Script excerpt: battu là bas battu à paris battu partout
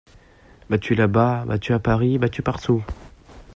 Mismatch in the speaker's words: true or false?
false